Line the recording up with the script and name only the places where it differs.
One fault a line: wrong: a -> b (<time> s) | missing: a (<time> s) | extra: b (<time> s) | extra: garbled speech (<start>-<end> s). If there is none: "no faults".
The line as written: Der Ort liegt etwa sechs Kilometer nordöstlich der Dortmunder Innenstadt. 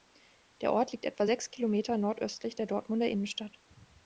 no faults